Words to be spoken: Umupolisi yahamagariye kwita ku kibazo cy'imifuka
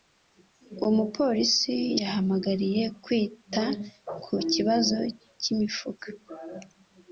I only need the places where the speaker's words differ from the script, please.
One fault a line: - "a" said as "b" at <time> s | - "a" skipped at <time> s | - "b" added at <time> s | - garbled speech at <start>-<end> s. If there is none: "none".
none